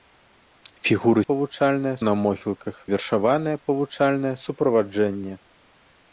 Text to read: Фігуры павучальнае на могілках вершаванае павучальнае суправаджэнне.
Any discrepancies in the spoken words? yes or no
no